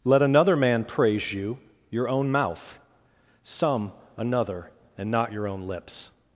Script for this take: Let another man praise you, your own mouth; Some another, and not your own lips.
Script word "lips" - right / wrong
right